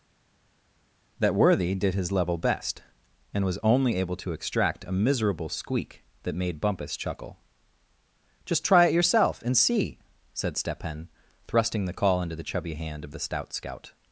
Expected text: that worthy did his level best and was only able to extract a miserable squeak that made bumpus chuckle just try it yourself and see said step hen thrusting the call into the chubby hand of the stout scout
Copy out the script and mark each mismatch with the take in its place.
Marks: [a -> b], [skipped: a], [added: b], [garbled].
that worthy did his level best and was only able to extract a miserable squeak that made bumpus chuckle just try it yourself and see said step hen thrusting the call into the chubby hand of the stout scout